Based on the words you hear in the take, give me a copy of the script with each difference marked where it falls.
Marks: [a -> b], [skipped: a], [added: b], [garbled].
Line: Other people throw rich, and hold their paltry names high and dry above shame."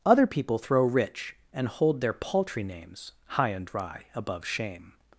Other people throw rich, and hold their paltry names high and dry above shame."